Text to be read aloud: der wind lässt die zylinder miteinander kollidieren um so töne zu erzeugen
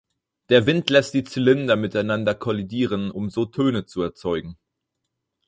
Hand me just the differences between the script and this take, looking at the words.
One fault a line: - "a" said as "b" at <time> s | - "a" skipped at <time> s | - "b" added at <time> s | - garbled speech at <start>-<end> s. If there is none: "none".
none